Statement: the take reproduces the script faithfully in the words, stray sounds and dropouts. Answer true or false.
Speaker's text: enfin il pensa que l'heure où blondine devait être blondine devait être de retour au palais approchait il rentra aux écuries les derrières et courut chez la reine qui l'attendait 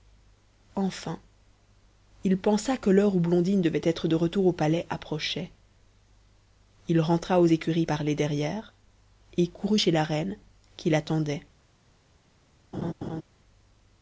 false